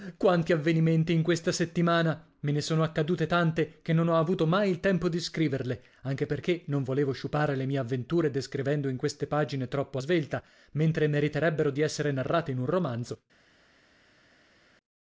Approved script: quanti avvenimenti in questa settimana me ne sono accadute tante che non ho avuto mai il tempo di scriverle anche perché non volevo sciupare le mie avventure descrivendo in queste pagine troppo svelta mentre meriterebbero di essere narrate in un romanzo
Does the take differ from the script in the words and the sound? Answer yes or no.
no